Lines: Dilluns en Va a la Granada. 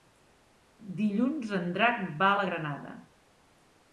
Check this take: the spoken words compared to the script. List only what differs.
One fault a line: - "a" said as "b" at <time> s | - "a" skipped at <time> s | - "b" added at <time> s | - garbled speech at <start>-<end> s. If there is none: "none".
- "Drac" added at 1.8 s